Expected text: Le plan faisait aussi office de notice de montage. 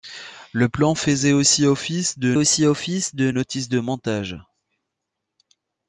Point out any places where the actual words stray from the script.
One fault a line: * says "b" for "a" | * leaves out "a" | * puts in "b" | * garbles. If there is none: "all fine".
* puts in "aussi office de"